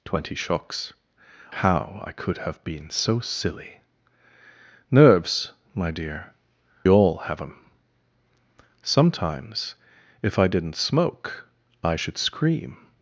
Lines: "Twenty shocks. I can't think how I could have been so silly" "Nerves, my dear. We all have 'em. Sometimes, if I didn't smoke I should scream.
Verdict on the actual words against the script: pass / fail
fail